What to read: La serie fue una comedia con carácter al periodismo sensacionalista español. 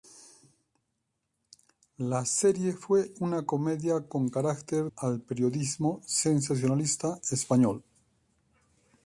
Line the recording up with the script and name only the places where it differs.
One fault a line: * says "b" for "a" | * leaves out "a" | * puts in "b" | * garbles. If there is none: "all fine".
all fine